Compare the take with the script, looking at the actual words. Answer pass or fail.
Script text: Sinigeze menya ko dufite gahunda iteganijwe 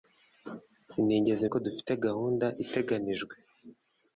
fail